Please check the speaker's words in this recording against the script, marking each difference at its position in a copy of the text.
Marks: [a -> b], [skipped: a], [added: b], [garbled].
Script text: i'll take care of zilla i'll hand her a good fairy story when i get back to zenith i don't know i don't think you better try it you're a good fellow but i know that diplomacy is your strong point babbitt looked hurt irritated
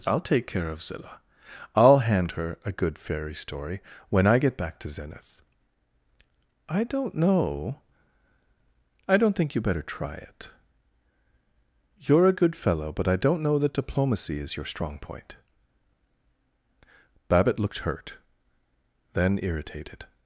i'll take care of zilla i'll hand her a good fairy story when i get back to zenith i don't know i don't think you better try it you're a good fellow but i [added: don't] know that diplomacy is your strong point babbitt looked hurt [added: then] irritated